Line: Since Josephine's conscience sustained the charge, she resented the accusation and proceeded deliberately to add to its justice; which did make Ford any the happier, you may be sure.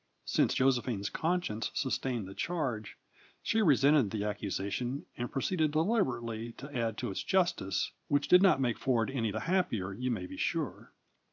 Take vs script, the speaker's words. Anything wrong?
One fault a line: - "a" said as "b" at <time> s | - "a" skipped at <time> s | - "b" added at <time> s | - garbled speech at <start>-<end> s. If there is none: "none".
- "not" added at 8.4 s